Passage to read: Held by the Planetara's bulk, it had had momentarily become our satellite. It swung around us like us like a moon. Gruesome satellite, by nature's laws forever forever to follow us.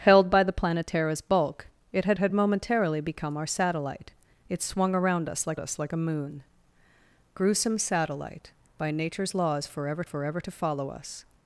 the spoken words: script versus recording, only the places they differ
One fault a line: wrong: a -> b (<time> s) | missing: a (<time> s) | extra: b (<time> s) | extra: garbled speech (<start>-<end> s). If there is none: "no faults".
no faults